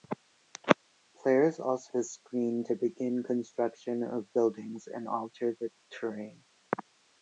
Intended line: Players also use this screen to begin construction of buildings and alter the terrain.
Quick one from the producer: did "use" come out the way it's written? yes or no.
no